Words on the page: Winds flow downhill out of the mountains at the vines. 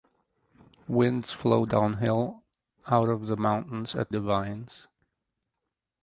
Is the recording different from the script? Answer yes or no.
no